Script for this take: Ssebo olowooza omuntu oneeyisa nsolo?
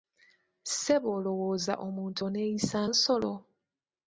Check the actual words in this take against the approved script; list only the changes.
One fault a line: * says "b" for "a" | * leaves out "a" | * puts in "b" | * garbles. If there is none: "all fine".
all fine